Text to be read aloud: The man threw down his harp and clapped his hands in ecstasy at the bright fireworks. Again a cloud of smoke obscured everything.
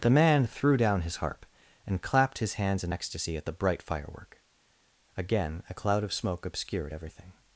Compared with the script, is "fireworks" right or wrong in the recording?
wrong